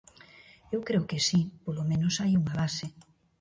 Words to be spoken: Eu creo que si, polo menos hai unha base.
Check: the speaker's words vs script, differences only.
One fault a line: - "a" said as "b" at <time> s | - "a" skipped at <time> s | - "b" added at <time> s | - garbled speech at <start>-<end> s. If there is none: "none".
none